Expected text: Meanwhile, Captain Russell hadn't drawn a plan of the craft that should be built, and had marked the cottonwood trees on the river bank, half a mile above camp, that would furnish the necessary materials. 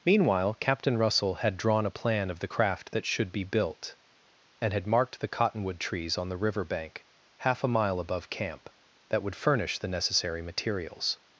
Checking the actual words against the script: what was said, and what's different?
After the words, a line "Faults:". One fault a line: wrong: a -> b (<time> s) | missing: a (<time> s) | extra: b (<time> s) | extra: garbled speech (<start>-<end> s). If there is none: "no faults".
Meanwhile, Captain Russell had drawn a plan of the craft that should be built, and had marked the cottonwood trees on the river bank, half a mile above camp, that would furnish the necessary materials.
Faults:
wrong: hadn't -> had (1.4 s)